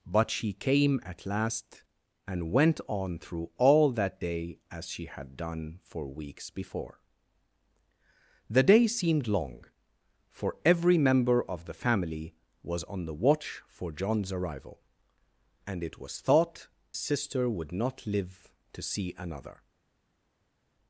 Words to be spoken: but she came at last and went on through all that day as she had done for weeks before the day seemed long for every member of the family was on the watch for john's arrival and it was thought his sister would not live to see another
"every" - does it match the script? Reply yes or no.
yes